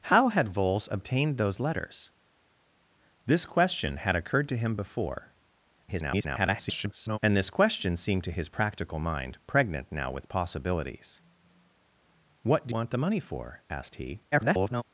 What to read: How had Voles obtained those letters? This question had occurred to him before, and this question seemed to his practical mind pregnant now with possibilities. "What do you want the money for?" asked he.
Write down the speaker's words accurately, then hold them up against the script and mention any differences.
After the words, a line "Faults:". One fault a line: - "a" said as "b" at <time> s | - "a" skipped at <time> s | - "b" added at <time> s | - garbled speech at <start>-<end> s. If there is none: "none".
How had Voles obtained those letters? This question had occurred to him before, [garbled] and this question seemed to his practical mind pregnant now with possibilities. "What do want the money for?" asked he. [garbled]
Faults:
- garbled speech at 5.9-7.2 s
- "you" skipped at 12.7 s
- garbled speech at 14.3-14.8 s